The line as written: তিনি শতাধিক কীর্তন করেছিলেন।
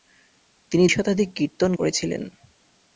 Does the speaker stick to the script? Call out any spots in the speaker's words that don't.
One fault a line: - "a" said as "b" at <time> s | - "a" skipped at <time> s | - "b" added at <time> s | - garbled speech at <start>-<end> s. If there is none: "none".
none